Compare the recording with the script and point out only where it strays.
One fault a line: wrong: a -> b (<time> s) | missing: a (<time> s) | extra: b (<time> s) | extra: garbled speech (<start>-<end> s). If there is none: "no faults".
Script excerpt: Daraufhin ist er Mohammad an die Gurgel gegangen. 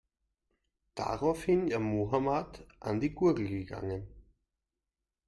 missing: ist (1.7 s)